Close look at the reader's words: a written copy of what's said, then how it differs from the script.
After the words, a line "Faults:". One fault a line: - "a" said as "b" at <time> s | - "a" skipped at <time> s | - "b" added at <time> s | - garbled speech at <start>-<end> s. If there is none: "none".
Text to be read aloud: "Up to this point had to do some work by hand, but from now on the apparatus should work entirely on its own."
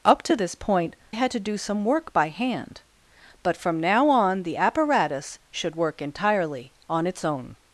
"Up to this point had to do some work by hand, but from now on the apparatus should work entirely on its own."
Faults:
none